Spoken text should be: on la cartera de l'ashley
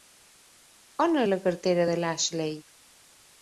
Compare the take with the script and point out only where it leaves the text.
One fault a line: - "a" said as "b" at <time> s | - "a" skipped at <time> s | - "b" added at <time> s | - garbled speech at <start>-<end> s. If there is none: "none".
none